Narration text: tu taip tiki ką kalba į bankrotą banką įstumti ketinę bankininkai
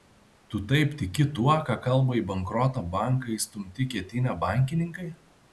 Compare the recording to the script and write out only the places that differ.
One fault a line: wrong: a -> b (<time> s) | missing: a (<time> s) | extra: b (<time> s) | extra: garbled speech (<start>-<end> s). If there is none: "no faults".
extra: tuo (1.4 s)